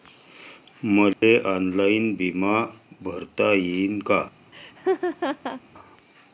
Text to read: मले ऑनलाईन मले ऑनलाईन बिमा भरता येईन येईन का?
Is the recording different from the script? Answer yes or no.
yes